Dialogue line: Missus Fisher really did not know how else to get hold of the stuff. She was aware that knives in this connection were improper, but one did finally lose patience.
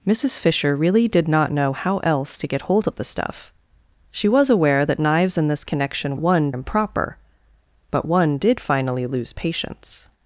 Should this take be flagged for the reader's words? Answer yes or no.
yes